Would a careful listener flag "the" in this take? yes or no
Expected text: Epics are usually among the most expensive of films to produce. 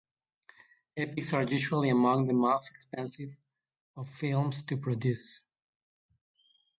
no